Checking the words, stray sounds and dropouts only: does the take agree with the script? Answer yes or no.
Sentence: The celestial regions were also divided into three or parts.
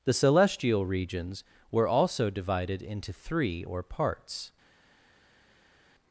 yes